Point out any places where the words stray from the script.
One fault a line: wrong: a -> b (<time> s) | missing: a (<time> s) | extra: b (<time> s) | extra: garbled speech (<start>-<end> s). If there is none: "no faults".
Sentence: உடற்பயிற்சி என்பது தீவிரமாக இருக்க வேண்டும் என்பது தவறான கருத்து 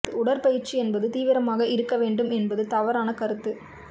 no faults